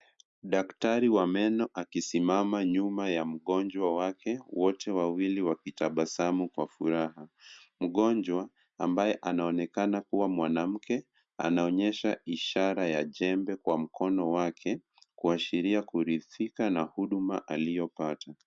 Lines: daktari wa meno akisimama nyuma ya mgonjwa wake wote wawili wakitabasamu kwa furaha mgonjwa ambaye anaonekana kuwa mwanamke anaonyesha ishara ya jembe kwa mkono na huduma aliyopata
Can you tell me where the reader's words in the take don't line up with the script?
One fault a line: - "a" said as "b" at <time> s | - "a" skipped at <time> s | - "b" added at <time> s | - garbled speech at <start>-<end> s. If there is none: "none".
- "wake kuashiria kuridhika" added at 14.3 s